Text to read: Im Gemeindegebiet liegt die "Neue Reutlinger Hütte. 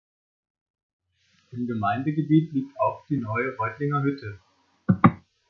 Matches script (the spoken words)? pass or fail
fail